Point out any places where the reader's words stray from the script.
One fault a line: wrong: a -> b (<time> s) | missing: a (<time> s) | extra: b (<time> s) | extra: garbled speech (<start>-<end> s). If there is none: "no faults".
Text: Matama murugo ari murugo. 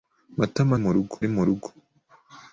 no faults